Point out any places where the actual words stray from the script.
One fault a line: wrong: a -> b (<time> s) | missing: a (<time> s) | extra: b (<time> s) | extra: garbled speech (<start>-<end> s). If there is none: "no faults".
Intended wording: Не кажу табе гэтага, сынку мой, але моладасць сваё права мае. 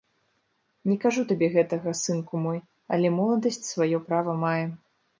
no faults